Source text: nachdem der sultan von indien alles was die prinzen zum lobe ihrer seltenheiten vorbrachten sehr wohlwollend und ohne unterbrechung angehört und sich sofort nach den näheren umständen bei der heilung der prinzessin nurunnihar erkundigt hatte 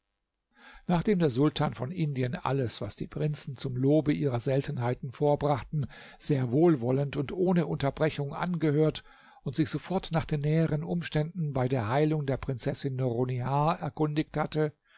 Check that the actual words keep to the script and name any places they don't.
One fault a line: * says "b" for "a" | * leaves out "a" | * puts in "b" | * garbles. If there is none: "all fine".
all fine